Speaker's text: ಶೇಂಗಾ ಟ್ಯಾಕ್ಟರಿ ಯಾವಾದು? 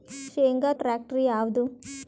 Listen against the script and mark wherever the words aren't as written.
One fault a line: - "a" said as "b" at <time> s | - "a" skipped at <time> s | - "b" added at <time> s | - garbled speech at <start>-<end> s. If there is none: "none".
none